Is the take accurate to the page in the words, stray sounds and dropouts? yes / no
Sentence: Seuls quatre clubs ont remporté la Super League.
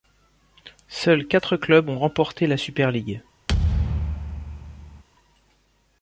no